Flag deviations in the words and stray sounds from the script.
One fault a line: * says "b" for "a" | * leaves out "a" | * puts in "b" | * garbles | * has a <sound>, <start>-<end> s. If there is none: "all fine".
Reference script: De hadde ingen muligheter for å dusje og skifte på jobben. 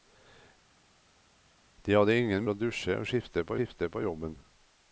* leaves out "muligheter for"
* puts in "skifte på"